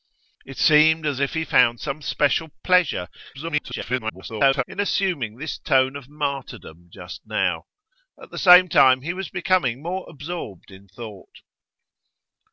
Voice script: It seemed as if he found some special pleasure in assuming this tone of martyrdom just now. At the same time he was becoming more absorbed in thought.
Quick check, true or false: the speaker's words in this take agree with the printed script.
false